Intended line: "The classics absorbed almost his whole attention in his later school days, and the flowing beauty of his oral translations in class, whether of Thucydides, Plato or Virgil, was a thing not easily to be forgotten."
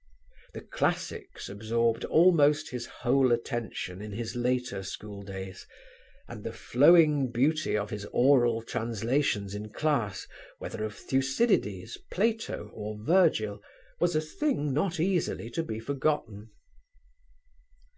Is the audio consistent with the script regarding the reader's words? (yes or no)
yes